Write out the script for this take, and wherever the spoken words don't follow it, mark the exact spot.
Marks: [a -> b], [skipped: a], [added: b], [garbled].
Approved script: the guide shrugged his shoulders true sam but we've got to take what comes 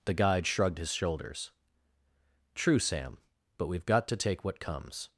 the guide shrugged his shoulders true sam but we've got to take what comes